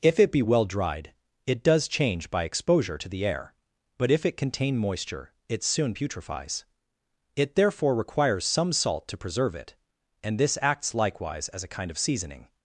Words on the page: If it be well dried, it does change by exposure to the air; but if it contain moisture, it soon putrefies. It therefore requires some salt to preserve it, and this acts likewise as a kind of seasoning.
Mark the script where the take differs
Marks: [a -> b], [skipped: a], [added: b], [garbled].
If it be well dried, it does change by exposure to the air; but if it contain moisture, it soon putrefies. It therefore requires some salt to preserve it, and this acts likewise as a kind of seasoning.